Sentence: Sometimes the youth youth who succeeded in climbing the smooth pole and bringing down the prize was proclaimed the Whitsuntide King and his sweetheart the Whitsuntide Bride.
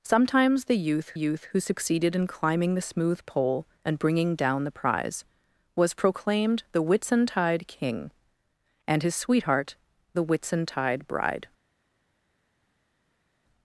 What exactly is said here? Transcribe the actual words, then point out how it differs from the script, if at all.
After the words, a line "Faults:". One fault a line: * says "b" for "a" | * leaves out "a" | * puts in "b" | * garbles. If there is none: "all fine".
Sometimes the youth youth who succeeded in climbing the smooth pole and bringing down the prize was proclaimed the Whitsuntide King and his sweetheart the Whitsuntide Bride.
Faults:
all fine